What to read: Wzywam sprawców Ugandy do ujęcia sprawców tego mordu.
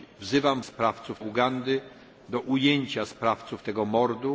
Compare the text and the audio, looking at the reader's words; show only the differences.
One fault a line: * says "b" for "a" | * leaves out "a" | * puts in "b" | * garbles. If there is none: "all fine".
all fine